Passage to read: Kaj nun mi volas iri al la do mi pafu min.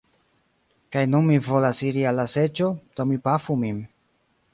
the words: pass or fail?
fail